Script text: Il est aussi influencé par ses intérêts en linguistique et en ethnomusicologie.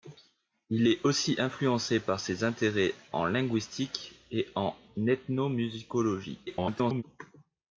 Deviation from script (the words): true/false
true